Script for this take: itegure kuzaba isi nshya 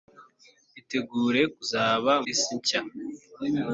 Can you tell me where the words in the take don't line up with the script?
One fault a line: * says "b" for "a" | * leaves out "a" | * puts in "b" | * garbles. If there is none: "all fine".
all fine